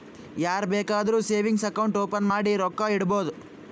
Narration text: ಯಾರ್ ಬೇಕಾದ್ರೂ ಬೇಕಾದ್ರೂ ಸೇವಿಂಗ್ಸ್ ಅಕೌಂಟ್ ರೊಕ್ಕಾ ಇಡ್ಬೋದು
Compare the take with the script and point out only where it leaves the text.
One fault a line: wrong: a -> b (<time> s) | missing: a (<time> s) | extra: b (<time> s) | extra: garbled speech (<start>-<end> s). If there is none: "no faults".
missing: ಬೇಕಾದ್ರೂ (1.2 s)
extra: ಓಪನ್ ಮಾಡಿ (2.0 s)